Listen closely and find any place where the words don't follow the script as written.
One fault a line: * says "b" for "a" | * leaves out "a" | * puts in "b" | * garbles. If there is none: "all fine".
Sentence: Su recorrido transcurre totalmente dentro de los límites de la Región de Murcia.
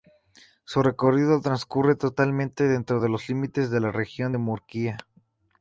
all fine